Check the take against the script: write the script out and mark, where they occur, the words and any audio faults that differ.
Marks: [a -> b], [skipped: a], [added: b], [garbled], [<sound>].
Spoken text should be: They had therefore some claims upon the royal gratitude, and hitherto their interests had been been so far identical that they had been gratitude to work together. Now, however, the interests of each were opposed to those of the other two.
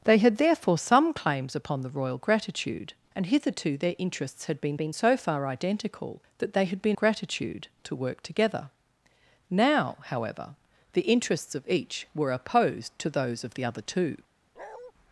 They had therefore some claims upon the royal gratitude, and hitherto their interests had been been so far identical that they had been gratitude to work together. Now, however, the interests of each were opposed to those of the other two. [bark]